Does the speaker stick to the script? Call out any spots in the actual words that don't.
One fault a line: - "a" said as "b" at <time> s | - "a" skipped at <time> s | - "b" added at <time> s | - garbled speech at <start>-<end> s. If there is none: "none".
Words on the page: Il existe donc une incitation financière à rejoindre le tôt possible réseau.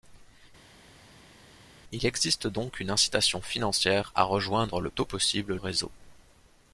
none